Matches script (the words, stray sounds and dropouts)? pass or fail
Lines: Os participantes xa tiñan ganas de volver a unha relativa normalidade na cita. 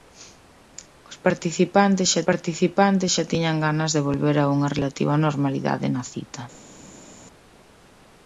fail